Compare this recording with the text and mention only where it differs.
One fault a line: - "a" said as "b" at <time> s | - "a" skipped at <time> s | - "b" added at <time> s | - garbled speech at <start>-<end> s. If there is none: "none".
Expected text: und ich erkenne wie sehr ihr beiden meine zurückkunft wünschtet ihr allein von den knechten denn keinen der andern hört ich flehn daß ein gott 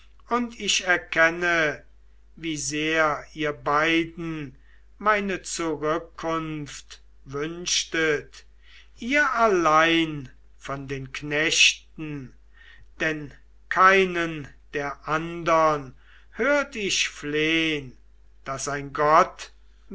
none